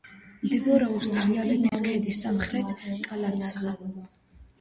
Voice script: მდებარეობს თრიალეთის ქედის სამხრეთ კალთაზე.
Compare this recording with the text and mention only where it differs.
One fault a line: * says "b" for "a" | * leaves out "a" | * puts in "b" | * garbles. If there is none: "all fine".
all fine